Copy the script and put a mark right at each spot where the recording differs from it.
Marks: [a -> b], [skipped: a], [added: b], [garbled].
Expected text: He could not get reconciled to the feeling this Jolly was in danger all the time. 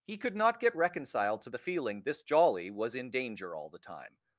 He could not get reconciled to the feeling this Jolly was in danger all the time.